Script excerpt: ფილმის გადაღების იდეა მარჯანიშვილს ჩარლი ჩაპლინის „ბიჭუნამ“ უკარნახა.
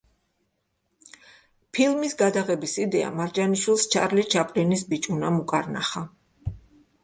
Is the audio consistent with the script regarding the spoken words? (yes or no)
yes